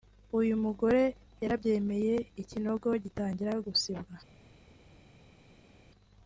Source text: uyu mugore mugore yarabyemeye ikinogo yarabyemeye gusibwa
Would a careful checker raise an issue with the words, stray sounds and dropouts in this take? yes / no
yes